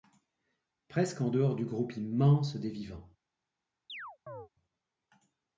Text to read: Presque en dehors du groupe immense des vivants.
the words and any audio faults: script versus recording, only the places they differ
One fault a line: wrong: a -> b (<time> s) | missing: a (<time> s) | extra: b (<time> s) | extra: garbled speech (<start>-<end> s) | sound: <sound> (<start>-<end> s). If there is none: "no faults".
sound: chirp (3.9-4.5 s)